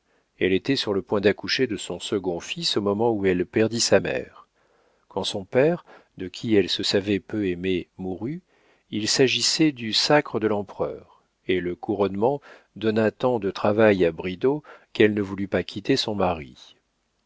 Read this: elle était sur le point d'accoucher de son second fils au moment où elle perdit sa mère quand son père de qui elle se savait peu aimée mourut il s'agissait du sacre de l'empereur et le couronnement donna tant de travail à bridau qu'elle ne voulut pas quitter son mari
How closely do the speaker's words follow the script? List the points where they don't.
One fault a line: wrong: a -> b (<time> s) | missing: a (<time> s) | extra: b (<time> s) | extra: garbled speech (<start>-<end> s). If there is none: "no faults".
no faults